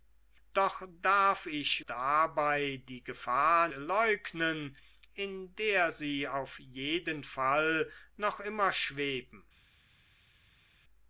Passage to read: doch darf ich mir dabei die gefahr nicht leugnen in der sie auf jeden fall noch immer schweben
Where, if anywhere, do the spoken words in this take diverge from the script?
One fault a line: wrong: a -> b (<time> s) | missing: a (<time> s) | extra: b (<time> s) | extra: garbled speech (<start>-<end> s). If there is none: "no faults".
missing: mir (1.8 s)
missing: nicht (3.7 s)